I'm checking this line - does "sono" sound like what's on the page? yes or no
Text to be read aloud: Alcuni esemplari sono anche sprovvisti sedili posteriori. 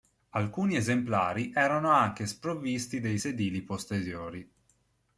no